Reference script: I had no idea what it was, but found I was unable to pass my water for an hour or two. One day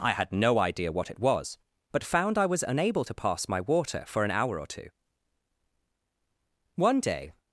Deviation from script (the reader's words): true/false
false